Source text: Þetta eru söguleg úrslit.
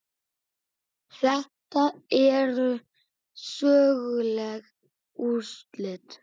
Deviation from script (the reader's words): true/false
false